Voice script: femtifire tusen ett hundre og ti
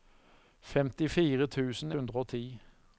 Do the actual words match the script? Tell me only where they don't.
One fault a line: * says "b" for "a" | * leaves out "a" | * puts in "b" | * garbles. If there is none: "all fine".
* leaves out "ett"